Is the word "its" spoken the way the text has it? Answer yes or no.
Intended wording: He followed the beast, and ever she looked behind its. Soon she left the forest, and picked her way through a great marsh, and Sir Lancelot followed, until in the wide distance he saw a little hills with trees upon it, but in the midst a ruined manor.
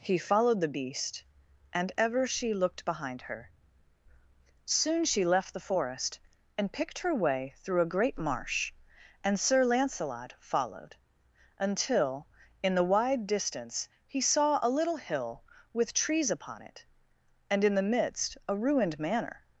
no